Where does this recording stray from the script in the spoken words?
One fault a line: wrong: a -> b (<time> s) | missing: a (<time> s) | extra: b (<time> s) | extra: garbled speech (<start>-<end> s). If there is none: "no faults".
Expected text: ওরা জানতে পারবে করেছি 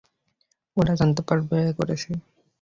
no faults